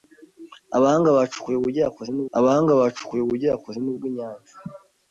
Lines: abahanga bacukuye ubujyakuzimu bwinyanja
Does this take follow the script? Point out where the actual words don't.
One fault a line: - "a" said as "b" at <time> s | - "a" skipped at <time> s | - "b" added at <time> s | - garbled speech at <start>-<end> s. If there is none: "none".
- "abahanga bacukuye ubujyakuzimu" added at 2.4 s